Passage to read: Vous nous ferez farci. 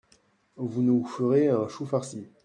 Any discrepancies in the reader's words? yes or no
yes